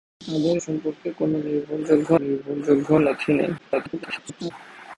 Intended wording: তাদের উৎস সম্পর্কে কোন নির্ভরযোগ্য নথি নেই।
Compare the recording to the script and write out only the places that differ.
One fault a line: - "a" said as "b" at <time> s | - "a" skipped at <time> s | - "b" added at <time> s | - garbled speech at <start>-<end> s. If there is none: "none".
- "উৎস" skipped at 0.6 s
- "নির্ভরযোগ্য" added at 2.2 s
- garbled speech at 3.6-4.5 s